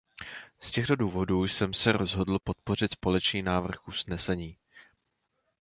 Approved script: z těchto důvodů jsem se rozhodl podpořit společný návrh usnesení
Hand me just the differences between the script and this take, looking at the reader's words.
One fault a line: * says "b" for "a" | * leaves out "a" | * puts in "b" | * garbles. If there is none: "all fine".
all fine